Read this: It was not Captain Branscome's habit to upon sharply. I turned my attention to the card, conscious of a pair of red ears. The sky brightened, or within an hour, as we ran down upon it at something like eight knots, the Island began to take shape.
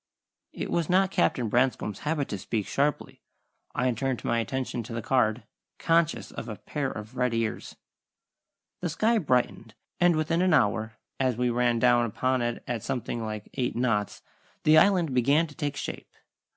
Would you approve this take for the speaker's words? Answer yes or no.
no